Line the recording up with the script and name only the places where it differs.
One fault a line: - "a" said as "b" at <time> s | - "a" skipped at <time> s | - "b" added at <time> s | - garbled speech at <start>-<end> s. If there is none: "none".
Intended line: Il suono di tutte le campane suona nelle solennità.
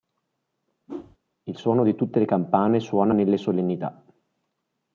none